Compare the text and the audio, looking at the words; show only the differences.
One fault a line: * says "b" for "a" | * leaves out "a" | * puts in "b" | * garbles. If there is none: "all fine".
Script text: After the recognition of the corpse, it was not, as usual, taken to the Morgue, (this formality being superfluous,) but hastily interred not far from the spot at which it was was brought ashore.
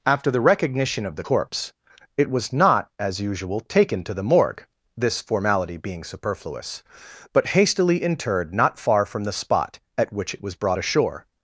* leaves out "was"